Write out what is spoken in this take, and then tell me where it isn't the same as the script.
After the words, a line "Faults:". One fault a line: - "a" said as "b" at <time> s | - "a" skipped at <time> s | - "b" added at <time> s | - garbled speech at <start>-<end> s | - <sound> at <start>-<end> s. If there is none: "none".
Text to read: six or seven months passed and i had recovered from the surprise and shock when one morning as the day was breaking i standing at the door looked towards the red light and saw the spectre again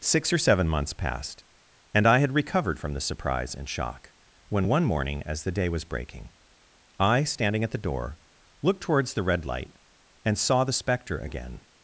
six or seven months passed and i had recovered from the surprise and shock when one morning as the day was breaking i standing at the door looked towards the red light and saw the spectre again
Faults:
none